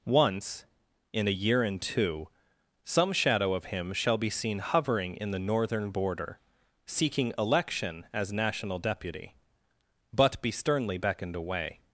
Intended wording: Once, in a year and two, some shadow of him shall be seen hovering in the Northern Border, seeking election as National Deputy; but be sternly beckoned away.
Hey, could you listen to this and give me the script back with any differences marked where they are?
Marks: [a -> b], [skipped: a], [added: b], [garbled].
Once, in a year and two, some shadow of him shall be seen hovering in the Northern Border, seeking election as National Deputy; but be sternly beckoned away.